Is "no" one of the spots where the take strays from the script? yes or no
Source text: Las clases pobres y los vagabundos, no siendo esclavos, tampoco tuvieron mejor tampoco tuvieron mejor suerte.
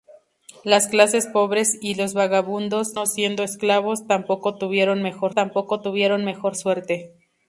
no